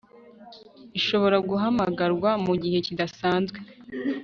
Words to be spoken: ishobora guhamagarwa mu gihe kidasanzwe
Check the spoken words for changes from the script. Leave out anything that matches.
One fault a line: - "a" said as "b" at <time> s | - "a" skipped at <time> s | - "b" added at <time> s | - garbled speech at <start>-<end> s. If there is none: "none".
none